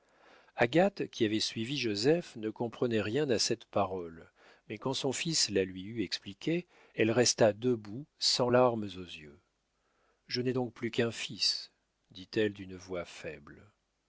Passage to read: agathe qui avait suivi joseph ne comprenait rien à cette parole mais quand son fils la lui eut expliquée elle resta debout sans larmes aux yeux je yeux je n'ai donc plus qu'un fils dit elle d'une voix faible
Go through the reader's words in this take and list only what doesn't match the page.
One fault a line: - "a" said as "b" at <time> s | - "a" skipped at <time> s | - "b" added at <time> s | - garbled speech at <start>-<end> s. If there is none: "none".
- "yeux je" skipped at 10.4 s